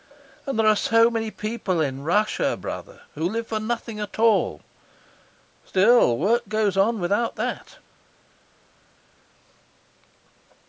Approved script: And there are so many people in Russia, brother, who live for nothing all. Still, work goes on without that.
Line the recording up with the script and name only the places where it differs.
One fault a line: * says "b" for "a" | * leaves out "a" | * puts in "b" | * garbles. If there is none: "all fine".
* puts in "at"